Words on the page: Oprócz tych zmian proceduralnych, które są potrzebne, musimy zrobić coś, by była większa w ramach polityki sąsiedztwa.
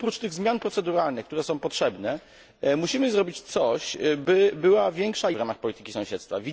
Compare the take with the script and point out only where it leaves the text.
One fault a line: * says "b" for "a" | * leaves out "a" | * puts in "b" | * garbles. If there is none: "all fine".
all fine